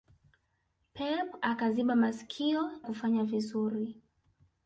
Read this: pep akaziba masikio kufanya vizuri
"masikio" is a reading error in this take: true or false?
false